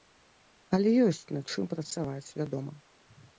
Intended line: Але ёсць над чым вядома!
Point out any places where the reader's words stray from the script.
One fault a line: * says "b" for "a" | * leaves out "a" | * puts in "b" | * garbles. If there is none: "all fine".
* puts in "працаваць"